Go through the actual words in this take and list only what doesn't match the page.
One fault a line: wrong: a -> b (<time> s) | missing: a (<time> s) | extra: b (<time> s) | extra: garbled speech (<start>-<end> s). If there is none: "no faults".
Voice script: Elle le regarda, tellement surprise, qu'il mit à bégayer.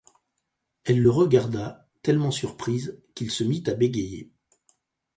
extra: se (3.3 s)